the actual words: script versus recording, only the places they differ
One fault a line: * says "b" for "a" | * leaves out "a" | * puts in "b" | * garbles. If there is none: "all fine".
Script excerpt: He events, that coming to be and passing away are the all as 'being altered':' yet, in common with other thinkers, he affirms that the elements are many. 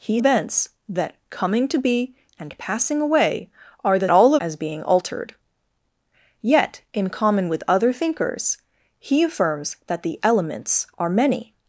all fine